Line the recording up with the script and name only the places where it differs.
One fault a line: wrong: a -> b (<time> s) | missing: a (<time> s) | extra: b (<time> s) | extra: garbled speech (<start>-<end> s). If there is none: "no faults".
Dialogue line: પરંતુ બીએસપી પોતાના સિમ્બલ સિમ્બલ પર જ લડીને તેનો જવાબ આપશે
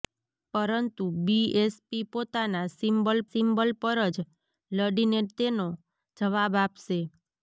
no faults